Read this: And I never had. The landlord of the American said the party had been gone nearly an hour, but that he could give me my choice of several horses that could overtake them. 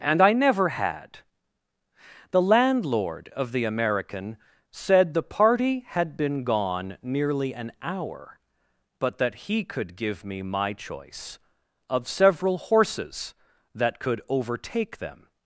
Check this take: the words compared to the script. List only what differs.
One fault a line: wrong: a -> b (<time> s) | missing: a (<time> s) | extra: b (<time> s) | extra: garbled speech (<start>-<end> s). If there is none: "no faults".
no faults